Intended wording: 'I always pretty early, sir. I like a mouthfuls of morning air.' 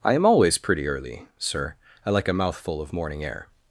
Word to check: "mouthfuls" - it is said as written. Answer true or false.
false